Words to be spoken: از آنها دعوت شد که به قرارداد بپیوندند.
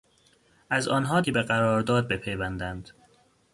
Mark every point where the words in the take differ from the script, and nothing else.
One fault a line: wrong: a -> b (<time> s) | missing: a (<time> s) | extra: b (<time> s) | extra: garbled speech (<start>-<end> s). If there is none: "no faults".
missing: دعوت شد (1.2 s)